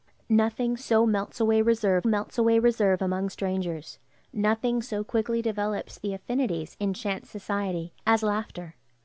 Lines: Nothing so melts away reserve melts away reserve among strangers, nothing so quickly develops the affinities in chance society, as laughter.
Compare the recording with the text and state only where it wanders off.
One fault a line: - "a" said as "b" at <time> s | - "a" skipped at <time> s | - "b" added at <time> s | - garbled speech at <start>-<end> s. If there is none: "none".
none